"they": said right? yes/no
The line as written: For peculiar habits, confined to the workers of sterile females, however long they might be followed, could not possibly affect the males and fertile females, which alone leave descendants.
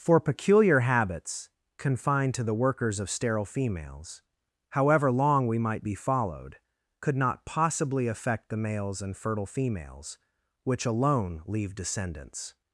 no